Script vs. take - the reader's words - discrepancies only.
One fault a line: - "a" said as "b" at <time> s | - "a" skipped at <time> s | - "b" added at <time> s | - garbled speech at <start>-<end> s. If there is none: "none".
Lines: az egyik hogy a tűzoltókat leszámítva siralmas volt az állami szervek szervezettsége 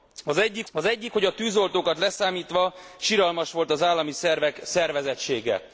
- "az egyik" added at 0.7 s